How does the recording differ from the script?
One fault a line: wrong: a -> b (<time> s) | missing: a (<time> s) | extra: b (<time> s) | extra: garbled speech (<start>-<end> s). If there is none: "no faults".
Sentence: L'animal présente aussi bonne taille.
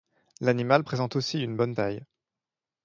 extra: une (1.4 s)